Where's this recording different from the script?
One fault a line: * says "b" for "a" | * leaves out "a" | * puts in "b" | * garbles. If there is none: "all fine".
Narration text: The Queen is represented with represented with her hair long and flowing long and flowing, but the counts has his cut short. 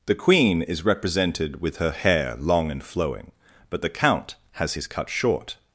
* leaves out "represented with"
* leaves out "long and flowing"
* says "count" for "counts"